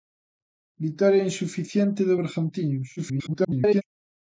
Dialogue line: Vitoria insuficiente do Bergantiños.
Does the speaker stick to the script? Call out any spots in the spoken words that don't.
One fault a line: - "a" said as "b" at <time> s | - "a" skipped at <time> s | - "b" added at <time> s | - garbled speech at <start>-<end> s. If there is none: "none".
- garbled speech at 3.0-3.8 s